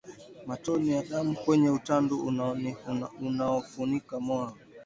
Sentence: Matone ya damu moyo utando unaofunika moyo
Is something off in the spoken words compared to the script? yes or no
yes